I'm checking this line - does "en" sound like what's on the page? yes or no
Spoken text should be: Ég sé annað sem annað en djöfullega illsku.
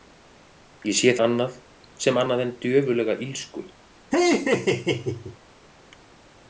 yes